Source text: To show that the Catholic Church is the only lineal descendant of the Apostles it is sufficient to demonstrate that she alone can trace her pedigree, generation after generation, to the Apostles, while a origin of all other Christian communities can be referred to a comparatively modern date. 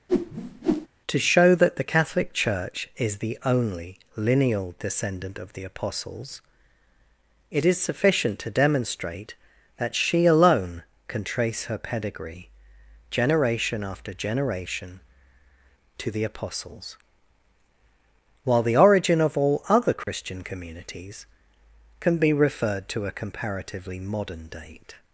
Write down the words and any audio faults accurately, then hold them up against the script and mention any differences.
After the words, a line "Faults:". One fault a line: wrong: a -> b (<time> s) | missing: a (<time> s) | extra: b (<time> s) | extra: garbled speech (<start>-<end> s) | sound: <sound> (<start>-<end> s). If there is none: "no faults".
To show that the Catholic Church is the only lineal descendant of the Apostles it is sufficient to demonstrate that she alone can trace her pedigree, generation after generation, to the Apostles, while the origin of all other Christian communities can be referred to a comparatively modern date.
Faults:
sound: whoosh (0.1-0.9 s)
wrong: a -> the (18.6 s)
sound: dropout (20.0-20.1 s)